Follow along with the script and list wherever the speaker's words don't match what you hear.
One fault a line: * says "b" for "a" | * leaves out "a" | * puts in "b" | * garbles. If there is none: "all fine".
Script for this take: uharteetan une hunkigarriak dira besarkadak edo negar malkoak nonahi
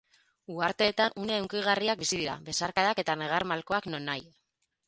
* puts in "bizi"
* says "eta" for "edo"